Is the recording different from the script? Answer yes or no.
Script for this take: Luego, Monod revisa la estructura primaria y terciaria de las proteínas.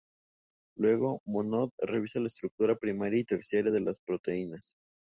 no